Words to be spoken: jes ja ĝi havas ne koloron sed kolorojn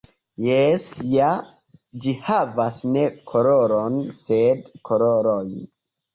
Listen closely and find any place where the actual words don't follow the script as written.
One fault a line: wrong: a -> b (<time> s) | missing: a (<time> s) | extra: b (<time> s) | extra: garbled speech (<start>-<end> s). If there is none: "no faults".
no faults